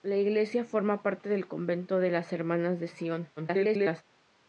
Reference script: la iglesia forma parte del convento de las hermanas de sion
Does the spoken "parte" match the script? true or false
true